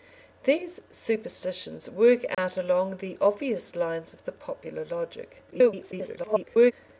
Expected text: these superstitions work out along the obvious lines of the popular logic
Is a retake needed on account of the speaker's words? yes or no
yes